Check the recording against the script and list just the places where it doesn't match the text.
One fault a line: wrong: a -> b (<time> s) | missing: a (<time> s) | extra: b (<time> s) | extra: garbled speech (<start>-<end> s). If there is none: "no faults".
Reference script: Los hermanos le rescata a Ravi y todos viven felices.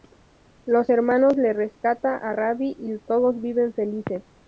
no faults